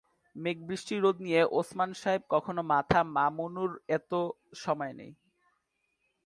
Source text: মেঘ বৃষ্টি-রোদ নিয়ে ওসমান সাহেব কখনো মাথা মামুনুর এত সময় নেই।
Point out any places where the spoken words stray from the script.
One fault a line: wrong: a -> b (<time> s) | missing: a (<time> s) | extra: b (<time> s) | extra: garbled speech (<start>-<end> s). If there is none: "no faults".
no faults